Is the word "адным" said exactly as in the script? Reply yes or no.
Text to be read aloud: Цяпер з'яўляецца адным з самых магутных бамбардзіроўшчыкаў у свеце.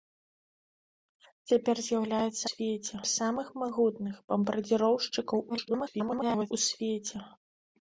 no